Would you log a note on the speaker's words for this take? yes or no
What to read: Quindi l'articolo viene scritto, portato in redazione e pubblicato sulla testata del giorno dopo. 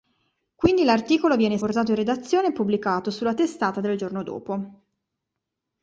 yes